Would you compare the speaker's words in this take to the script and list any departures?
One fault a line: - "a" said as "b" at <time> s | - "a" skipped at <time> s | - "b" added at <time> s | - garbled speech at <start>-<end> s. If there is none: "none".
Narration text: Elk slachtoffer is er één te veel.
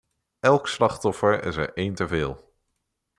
none